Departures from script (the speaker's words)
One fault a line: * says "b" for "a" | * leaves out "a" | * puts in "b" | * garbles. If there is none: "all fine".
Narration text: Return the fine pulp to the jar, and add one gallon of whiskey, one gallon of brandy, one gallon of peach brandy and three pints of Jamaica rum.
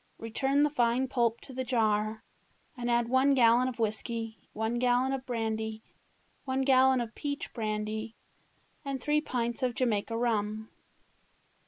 all fine